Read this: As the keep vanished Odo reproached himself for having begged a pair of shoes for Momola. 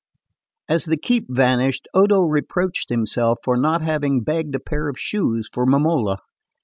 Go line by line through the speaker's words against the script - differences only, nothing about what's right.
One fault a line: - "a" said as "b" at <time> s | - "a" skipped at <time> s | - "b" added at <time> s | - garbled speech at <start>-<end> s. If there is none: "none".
- "not" added at 3.5 s